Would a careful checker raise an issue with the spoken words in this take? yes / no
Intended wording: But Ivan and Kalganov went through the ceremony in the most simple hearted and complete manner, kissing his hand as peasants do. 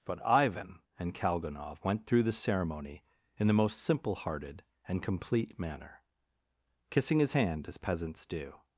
no